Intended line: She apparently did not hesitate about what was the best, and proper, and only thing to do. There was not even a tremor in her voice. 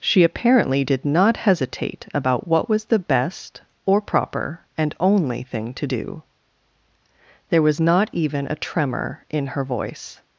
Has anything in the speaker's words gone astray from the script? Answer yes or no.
yes